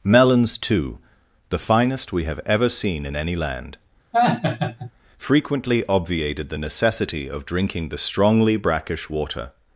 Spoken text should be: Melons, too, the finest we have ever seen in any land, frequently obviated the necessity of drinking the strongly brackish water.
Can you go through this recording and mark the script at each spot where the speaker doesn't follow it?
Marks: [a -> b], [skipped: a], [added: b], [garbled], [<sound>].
Melons, too, the finest we have ever seen in any land, [laugh] frequently obviated the necessity of drinking the strongly brackish water.